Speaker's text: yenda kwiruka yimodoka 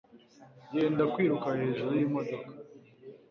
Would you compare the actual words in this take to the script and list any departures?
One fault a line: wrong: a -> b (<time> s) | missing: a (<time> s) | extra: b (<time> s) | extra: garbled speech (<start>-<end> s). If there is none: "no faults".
extra: hejuru (1.6 s)